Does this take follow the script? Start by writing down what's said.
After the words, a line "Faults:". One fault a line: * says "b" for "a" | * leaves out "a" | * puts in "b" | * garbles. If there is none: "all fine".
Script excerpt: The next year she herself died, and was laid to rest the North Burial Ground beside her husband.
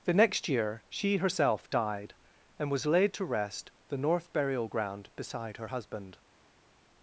The next year she herself died, and was laid to rest the North Burial Ground beside her husband.
Faults:
all fine